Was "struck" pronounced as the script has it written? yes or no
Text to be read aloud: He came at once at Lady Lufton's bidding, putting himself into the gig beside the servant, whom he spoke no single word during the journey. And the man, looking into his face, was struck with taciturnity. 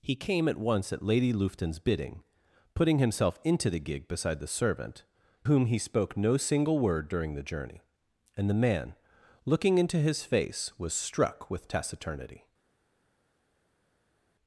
yes